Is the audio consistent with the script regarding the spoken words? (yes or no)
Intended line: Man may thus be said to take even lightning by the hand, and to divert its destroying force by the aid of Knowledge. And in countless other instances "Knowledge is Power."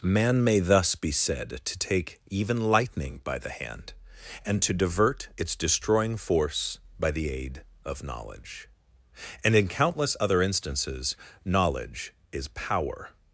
yes